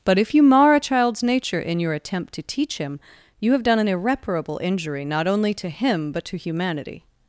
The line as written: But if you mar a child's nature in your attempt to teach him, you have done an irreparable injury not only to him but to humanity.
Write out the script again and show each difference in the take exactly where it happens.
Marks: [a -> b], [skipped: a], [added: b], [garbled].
But if you mar a child's nature in your attempt to teach him, you have done an irreparable injury not only to him but to humanity.